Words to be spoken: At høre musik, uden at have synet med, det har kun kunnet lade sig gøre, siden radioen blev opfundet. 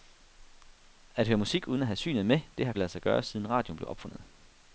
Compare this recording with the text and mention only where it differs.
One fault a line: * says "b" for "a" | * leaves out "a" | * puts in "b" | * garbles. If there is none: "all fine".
* leaves out "kun kunnet"